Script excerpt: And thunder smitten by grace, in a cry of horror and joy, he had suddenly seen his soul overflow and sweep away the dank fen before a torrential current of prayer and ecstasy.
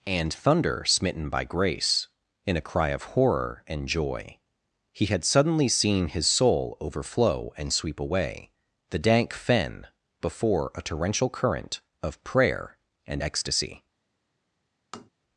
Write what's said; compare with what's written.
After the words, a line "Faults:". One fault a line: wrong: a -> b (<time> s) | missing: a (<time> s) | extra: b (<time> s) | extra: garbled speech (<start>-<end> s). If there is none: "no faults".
And thunder smitten by grace, in a cry of horror and joy, he had suddenly seen his soul overflow and sweep away the dank fen before a torrential current of prayer and ecstasy.
Faults:
no faults